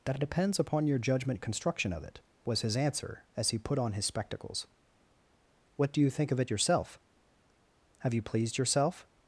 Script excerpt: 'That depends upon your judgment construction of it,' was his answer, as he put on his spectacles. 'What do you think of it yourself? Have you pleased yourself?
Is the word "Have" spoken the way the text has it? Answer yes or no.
yes